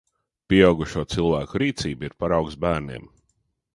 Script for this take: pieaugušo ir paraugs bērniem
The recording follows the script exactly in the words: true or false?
false